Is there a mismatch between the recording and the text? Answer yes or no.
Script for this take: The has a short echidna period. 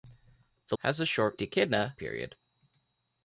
no